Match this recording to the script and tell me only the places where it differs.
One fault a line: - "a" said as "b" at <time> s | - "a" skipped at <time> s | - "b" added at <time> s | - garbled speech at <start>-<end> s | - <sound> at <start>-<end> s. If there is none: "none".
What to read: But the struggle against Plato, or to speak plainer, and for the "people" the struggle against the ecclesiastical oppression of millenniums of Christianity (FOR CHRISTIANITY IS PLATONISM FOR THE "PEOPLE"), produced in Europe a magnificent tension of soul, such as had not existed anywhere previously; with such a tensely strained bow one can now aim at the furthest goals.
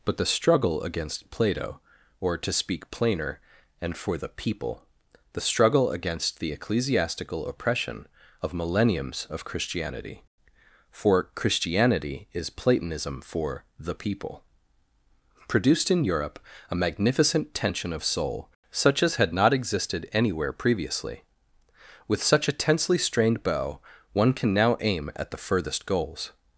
none